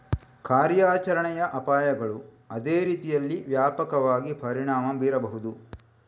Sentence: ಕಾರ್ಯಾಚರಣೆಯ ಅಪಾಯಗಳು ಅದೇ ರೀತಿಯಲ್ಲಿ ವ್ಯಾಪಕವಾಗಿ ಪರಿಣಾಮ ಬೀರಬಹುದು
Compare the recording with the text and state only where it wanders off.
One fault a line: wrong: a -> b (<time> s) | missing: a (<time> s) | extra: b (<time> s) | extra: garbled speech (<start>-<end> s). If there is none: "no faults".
no faults